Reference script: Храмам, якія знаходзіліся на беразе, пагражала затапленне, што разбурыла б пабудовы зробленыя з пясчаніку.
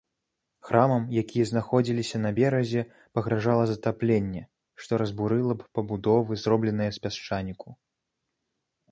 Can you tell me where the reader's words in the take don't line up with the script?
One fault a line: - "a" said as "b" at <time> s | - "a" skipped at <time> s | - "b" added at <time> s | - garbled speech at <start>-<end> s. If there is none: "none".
none